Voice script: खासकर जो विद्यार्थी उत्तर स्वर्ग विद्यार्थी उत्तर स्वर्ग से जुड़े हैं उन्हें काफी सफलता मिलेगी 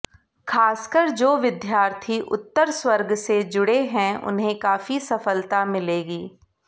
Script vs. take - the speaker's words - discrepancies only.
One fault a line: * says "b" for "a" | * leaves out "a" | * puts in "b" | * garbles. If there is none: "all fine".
* leaves out "विद्यार्थी उत्तर स्वर्ग"